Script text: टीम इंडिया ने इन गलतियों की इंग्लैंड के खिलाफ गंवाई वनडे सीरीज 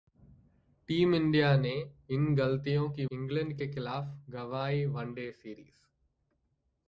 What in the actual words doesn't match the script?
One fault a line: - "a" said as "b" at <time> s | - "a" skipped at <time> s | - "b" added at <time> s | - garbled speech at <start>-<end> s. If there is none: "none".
none